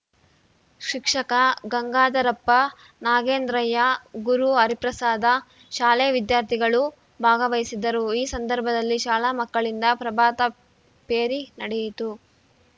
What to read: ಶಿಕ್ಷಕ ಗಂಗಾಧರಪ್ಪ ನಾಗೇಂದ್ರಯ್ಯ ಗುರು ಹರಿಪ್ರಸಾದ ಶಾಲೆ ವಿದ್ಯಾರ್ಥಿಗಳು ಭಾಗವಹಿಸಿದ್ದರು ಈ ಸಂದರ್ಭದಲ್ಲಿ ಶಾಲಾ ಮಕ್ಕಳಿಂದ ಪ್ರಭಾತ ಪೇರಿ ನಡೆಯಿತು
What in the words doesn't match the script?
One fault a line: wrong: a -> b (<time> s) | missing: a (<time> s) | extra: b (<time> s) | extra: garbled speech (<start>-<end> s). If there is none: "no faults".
no faults